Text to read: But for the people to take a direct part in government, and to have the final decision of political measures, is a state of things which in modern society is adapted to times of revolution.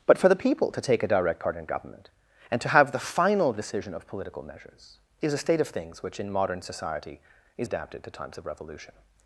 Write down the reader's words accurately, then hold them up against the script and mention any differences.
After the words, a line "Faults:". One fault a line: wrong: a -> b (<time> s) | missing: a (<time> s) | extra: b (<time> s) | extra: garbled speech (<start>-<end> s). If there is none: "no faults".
But for the people to take a direct part in government, and to have the final decision of political measures, is a state of things which in modern society is adapted to times of revolution.
Faults:
no faults